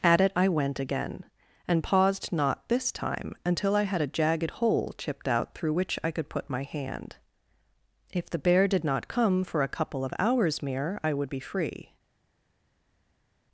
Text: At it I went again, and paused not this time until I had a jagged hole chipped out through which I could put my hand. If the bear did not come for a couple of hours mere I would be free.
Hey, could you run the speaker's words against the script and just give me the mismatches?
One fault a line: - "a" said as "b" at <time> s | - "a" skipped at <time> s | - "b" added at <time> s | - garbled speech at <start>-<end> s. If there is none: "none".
none